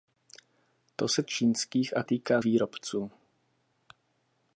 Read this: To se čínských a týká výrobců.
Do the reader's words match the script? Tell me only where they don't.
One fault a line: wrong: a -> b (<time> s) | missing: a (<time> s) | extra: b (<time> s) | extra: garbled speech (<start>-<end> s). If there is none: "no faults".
no faults